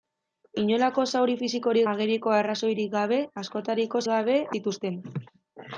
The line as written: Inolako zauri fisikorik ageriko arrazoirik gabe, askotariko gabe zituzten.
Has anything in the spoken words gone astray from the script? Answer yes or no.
no